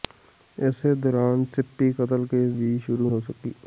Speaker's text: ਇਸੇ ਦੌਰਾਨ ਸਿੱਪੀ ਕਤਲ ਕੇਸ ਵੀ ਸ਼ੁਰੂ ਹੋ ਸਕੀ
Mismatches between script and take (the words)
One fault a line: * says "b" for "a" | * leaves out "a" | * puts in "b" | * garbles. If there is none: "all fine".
all fine